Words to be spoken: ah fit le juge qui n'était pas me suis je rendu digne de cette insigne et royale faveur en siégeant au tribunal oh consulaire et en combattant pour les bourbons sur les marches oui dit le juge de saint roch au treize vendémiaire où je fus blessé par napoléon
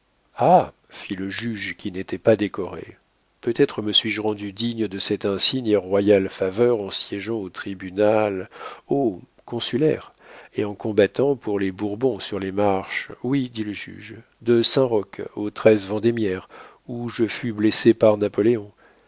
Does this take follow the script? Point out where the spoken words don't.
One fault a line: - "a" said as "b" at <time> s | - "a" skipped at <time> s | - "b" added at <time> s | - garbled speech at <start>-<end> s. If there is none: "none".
- "décoré peut être" added at 2.4 s